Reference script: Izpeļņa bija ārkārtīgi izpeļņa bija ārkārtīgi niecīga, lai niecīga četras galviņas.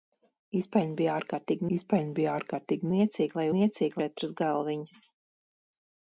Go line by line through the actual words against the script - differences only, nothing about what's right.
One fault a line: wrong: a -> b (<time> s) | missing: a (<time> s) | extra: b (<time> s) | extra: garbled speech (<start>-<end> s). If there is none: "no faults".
no faults